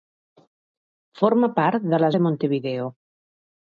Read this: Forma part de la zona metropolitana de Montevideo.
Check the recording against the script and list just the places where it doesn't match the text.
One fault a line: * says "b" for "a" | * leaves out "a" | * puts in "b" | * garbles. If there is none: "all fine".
* leaves out "zona metropolitana"